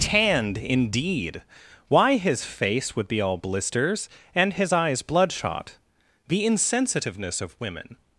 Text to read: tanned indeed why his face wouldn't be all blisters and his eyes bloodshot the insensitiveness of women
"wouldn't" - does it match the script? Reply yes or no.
no